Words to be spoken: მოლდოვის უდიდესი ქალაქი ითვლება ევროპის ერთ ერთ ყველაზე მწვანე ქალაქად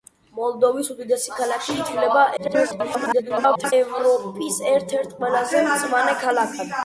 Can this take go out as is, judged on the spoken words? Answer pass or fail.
fail